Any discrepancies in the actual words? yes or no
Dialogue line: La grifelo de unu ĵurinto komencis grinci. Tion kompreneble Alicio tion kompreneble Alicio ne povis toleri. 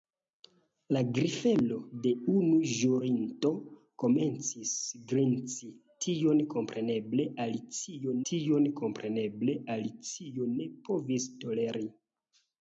no